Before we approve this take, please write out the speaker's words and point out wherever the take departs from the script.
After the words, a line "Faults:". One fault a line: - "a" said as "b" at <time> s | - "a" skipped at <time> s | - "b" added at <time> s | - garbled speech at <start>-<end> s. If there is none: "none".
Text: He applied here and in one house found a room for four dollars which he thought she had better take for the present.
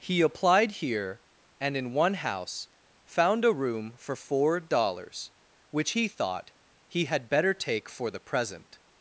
He applied here and in one house found a room for four dollars which he thought he had better take for the present.
Faults:
- "she" said as "he" at 6.9 s